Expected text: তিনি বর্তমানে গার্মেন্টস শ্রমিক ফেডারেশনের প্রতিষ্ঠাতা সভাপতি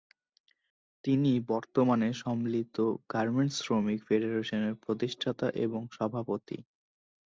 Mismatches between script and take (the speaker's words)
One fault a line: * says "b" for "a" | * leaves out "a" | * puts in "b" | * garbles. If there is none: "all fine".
* puts in "সম্মিলিত"
* puts in "এবং"